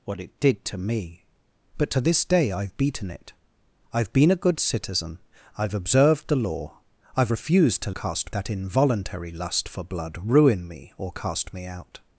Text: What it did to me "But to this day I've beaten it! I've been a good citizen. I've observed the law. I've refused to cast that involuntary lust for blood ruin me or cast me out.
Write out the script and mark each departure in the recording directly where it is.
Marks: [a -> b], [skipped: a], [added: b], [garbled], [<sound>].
What it did to me "But to this day I've beaten it! I've been a good citizen. I've observed the law. I've refused to cast that involuntary lust for blood ruin me or cast me out.